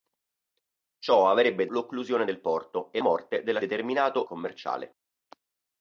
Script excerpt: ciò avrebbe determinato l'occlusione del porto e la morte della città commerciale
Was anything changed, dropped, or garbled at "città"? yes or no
yes